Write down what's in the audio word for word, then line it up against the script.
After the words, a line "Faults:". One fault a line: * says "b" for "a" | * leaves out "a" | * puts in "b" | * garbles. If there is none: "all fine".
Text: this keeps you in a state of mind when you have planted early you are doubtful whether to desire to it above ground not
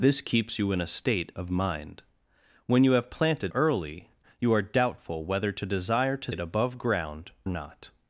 this keeps you in a state of mind when you have planted early you are doubtful whether to desire to it above ground not
Faults:
all fine